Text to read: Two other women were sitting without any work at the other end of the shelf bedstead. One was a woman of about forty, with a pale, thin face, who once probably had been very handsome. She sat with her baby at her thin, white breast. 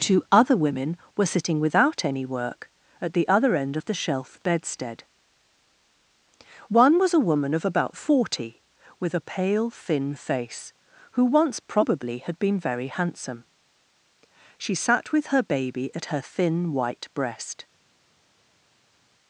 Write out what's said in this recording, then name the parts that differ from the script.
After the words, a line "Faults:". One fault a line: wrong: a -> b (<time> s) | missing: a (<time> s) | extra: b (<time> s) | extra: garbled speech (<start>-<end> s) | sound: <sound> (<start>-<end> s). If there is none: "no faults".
Two other women were sitting without any work at the other end of the shelf bedstead. One was a woman of about forty, with a pale, thin face, who once probably had been very handsome. She sat with her baby at her thin, white breast.
Faults:
no faults